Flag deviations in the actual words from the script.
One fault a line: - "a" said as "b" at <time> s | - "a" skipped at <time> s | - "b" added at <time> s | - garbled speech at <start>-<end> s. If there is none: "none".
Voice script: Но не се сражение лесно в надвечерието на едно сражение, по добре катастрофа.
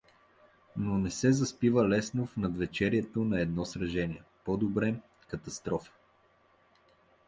- "сражение" said as "заспива" at 1.3 s